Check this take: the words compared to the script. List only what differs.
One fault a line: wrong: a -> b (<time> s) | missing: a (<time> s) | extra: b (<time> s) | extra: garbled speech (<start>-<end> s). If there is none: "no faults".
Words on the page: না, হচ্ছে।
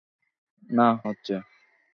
no faults